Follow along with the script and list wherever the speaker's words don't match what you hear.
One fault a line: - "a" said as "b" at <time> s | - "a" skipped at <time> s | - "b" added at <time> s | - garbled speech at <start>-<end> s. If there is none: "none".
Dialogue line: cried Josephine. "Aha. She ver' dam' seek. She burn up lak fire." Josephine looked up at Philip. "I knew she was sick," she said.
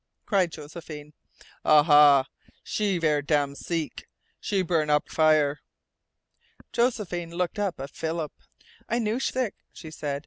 - "lak" skipped at 5.1 s
- "was" skipped at 9.3 s